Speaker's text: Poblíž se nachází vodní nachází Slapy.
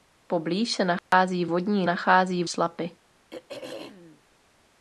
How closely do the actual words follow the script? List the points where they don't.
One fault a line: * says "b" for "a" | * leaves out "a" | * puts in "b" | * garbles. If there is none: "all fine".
all fine